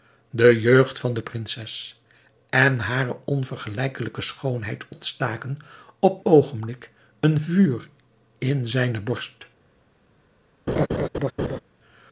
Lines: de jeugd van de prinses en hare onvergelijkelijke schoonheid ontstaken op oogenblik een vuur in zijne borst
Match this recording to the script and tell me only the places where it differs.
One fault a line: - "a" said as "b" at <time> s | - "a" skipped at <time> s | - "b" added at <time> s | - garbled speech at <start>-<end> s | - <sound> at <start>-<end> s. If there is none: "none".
- laugh at 10.7-11.6 s